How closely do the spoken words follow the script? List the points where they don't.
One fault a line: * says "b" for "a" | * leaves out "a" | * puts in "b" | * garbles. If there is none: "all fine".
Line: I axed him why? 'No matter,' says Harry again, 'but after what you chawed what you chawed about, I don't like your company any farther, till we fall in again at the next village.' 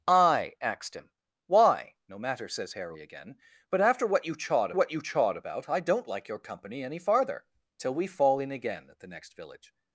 all fine